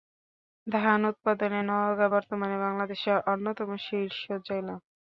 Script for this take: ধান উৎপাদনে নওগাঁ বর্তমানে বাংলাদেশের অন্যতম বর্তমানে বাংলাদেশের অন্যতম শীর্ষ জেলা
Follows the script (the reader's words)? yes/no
no